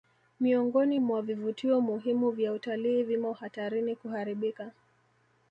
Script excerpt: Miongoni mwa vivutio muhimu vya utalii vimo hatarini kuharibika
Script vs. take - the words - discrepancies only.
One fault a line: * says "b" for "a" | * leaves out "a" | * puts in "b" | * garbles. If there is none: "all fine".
all fine